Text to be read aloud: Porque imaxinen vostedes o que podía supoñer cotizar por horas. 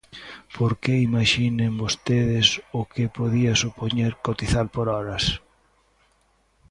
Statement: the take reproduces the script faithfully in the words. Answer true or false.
true